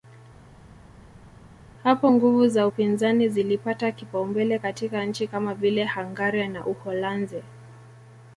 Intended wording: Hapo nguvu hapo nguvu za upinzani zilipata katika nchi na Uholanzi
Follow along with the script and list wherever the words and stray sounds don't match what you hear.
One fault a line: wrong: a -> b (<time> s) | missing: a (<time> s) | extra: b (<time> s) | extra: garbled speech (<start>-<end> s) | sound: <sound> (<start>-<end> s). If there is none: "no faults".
missing: hapo nguvu (2.5 s)
extra: kipaumbele (3.9 s)
extra: kama vile Hungaria (5.3 s)